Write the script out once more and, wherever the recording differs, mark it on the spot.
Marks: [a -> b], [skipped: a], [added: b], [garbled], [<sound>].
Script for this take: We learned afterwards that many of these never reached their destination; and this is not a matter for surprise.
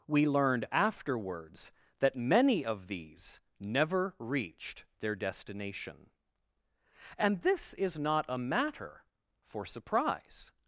We learned afterwards that many of these never reached their destination; and this is not a matter for surprise.